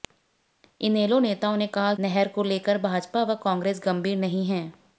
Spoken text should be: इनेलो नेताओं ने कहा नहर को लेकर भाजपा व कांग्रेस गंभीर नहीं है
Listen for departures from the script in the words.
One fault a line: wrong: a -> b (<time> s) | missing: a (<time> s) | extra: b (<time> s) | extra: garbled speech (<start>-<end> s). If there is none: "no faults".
no faults